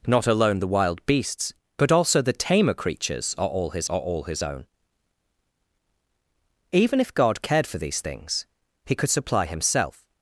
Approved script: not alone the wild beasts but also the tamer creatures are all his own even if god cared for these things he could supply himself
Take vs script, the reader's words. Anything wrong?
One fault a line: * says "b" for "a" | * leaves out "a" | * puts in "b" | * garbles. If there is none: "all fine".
* puts in "are all his"